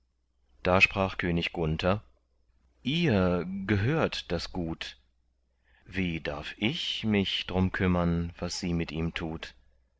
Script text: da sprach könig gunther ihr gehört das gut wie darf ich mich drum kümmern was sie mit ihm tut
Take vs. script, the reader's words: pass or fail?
pass